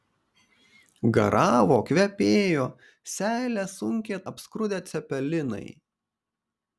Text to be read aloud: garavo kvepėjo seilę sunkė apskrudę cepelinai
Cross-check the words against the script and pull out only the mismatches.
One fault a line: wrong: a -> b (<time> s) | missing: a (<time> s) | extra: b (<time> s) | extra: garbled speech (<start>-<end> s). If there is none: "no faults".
no faults